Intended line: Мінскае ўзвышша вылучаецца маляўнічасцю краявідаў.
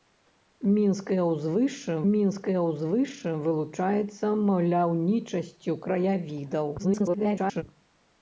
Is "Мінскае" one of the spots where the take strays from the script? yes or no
no